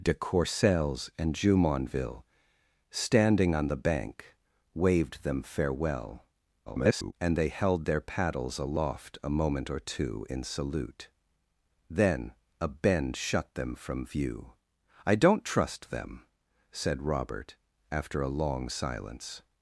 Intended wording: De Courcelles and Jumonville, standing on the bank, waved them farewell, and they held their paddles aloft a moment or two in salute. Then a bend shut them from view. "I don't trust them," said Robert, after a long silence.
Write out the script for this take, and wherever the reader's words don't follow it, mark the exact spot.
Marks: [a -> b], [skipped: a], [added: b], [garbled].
De Courcelles and Jumonville, standing on the bank, waved them farewell, [garbled] and they held their paddles aloft a moment or two in salute. Then a bend shut them from view. "I don't trust them," said Robert, after a long silence.